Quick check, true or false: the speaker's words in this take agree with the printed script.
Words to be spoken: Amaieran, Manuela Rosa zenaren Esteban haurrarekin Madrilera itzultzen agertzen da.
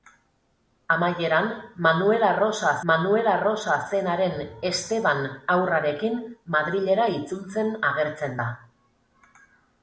false